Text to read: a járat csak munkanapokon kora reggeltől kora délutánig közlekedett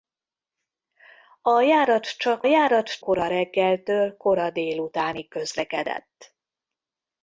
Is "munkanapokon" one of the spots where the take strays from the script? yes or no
yes